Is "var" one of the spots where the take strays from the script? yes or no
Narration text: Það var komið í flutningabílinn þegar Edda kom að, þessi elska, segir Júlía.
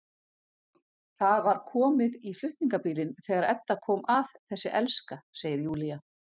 no